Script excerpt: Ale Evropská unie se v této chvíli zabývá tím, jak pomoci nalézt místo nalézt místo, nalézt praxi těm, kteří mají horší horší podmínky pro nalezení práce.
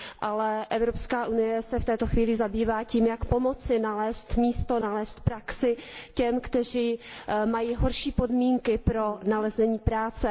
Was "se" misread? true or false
false